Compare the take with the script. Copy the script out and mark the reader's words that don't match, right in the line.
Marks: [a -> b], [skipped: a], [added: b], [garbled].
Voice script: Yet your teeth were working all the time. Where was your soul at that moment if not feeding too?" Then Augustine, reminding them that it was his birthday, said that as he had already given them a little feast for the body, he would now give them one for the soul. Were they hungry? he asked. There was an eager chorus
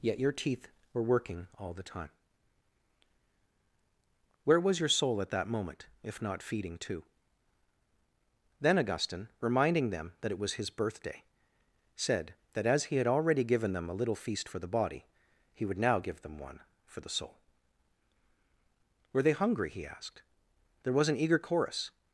Yet your teeth were working all the time. Where was your soul at that moment if not feeding too?" Then Augustine, reminding them that it was his birthday, said that as he had already given them a little feast for the body, he would now give them one for the soul. Were they hungry? he asked. There was an eager chorus